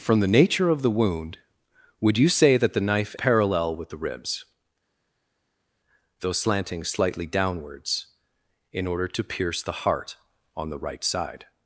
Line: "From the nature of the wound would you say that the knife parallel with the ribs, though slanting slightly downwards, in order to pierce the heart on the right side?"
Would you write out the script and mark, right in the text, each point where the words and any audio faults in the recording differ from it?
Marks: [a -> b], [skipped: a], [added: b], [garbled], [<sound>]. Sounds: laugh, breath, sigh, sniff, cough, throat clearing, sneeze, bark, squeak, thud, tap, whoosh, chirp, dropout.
"From the nature of the wound would you say that the knife parallel with the ribs, though slanting slightly downwards, in order to pierce the heart on the right side?"